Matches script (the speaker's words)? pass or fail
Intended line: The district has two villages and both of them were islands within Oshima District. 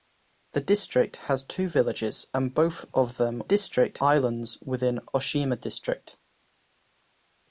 fail